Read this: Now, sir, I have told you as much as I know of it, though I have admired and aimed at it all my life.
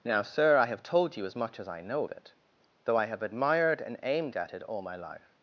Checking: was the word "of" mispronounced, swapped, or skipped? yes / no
yes